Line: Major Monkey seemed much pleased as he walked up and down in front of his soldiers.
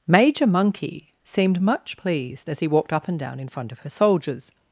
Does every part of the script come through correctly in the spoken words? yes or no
no